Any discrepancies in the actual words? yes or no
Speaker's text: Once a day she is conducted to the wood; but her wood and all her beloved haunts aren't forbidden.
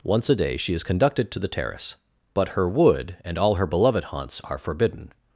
yes